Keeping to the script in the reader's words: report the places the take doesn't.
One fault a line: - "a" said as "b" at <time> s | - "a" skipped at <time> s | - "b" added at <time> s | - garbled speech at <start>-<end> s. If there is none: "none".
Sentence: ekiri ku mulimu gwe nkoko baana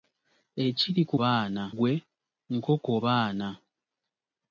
- "mulimu" said as "baana" at 1.2 s